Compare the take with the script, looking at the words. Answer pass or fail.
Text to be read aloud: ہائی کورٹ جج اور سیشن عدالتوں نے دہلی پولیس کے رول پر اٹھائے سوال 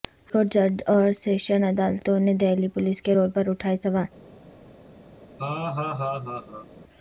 pass